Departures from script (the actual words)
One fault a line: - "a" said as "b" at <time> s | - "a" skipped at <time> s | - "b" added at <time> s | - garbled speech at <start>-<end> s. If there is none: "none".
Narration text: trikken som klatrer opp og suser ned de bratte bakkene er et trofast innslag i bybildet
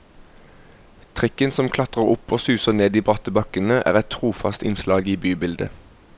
none